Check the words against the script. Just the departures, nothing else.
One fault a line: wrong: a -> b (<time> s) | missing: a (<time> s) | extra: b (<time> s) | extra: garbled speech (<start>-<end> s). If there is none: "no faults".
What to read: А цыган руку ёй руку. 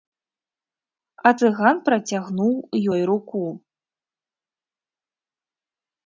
wrong: руку -> працягнуў (1.9 s)